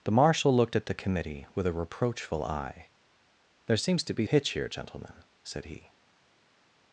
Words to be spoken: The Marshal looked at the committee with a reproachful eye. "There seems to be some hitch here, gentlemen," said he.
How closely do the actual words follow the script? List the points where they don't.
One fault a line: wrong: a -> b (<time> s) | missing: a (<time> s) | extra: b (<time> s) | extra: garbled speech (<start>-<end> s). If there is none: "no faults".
missing: some (4.3 s)